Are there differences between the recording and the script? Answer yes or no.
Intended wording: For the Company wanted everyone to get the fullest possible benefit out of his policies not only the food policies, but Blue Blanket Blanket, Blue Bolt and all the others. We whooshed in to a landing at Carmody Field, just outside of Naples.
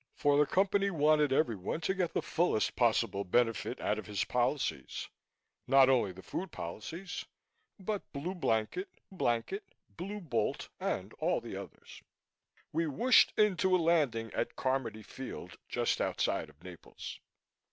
no